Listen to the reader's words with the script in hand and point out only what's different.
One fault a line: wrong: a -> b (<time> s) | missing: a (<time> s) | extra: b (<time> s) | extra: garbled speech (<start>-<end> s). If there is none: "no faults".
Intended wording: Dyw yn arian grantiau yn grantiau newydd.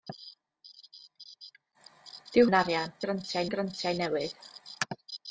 no faults